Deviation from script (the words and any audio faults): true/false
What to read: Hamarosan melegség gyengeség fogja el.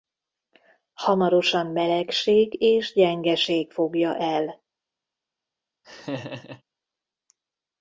true